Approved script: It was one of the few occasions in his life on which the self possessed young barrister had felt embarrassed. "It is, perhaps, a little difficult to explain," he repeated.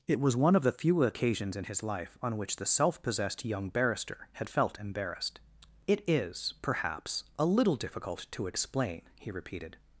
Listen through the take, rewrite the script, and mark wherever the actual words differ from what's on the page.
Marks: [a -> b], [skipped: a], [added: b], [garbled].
It was one of the few occasions in his life on which the self possessed young barrister had felt embarrassed. "It is, perhaps, a little difficult to explain," he repeated.